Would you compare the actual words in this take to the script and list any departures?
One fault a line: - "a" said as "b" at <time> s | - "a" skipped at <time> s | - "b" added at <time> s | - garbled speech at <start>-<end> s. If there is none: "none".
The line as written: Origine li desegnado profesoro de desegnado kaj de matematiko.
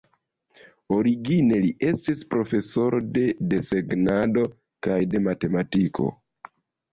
- "desegnado" said as "estis" at 1.9 s